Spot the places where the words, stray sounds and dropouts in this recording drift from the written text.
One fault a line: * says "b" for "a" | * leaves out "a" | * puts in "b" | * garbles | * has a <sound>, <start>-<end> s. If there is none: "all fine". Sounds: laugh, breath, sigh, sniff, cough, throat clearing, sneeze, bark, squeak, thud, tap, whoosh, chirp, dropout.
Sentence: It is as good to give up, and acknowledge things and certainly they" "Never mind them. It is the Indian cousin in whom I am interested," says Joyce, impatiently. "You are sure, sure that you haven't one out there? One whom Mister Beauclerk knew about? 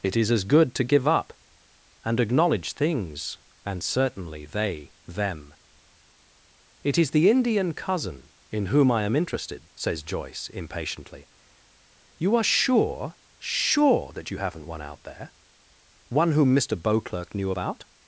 * leaves out "Never mind"